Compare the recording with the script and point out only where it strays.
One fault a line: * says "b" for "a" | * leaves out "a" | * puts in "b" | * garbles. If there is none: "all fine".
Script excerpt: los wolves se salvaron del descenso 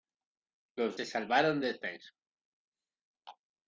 * leaves out "wolves"
* leaves out "del"